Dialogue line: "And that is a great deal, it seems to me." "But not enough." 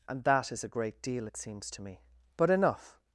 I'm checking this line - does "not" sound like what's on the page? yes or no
no